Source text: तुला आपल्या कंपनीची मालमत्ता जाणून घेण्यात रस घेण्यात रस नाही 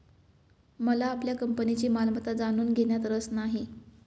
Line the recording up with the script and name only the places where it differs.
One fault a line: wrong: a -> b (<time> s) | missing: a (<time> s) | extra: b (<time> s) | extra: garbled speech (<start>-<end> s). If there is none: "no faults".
wrong: तुला -> मला (0.8 s)
missing: घेण्यात रस (3.3 s)